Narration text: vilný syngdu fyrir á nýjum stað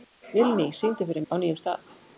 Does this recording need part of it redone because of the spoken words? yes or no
no